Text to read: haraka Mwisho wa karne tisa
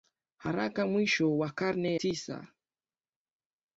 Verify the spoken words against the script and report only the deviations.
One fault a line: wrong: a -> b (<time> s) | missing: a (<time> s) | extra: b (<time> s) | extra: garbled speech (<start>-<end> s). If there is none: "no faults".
no faults